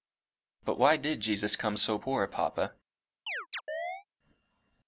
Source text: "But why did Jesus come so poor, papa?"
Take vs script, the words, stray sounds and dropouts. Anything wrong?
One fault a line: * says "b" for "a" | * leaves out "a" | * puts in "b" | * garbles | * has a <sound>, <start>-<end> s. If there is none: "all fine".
* has a chirp, 3.3-4.0 s